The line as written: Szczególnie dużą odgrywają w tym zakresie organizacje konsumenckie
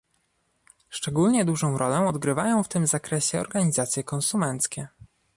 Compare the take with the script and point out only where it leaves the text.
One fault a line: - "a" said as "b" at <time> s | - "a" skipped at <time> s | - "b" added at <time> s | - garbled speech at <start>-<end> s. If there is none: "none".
- "rolę" added at 1.8 s